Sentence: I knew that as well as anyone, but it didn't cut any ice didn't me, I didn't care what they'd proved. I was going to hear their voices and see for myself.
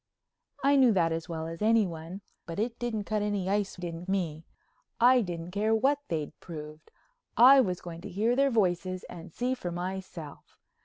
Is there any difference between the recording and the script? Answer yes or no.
no